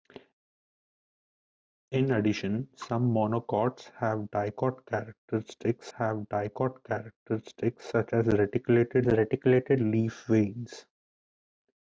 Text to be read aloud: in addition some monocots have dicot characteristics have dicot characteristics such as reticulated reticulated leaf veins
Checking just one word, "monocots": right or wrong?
right